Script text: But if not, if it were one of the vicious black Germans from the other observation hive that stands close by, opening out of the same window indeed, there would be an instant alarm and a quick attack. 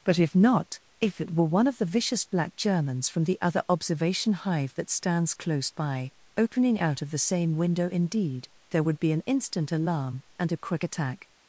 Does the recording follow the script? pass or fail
pass